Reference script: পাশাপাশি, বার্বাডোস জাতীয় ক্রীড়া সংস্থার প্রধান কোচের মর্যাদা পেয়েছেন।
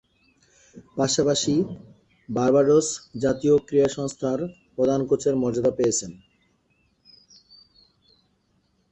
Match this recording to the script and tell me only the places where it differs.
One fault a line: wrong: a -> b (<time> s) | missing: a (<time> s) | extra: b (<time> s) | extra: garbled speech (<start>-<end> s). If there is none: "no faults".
no faults